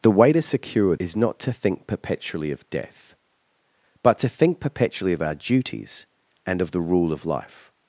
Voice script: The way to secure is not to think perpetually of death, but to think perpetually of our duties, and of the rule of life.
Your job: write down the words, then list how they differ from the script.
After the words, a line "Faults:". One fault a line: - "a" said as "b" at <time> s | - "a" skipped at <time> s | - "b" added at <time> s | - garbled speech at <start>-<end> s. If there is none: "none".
The way to secure is not to think perpetually of death, but to think perpetually of our duties, and of the rule of life.
Faults:
none